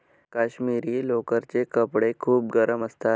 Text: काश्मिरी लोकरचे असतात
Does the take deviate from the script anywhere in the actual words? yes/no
yes